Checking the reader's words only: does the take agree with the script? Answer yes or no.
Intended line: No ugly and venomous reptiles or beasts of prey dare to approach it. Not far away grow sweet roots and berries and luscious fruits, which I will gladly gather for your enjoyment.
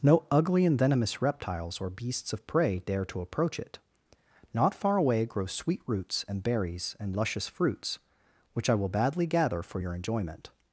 no